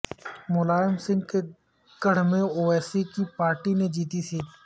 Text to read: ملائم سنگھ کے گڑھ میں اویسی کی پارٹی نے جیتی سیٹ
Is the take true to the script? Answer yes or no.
yes